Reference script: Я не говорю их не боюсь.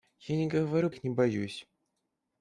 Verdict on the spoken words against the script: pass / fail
pass